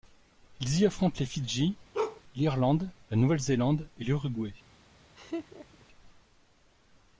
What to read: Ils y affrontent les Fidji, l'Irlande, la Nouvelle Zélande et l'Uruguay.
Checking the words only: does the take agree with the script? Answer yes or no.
yes